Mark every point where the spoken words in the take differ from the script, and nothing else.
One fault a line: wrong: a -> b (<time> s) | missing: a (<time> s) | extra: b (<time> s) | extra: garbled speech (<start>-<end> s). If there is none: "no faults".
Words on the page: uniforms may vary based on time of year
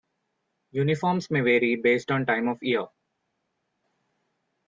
no faults